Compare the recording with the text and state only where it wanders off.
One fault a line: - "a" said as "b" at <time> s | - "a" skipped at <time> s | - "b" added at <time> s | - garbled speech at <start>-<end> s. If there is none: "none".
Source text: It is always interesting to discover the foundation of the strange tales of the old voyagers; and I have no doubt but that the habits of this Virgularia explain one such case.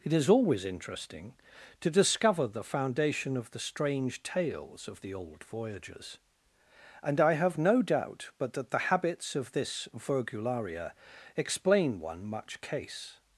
- "such" said as "much" at 12.2 s